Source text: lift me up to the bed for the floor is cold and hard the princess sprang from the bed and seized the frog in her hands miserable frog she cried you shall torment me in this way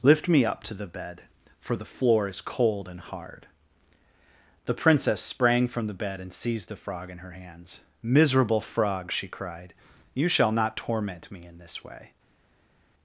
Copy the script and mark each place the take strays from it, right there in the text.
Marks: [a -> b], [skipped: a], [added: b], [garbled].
lift me up to the bed for the floor is cold and hard the princess sprang from the bed and seized the frog in her hands miserable frog she cried you shall [added: not] torment me in this way